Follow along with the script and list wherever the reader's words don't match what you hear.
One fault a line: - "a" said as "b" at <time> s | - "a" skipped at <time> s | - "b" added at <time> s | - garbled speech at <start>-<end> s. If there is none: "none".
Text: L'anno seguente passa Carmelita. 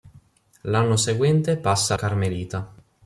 none